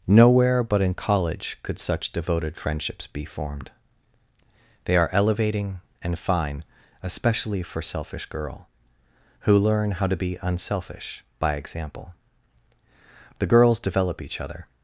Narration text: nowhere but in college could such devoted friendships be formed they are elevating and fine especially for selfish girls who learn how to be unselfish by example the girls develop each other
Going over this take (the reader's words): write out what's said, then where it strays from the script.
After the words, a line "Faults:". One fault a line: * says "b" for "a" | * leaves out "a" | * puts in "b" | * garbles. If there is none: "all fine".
nowhere but in college could such devoted friendships be formed they are elevating and fine especially for selfish girl who learn how to be unselfish by example the girls develop each other
Faults:
* says "girl" for "girls"